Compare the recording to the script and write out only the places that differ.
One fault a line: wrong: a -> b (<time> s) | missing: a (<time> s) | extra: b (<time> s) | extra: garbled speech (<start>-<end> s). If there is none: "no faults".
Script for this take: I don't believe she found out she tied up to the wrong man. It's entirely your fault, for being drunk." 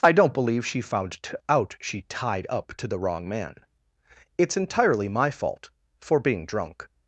wrong: your -> my (5.1 s)